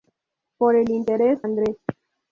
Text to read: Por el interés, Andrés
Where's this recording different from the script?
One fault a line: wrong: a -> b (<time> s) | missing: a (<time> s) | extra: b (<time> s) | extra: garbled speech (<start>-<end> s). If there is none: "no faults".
no faults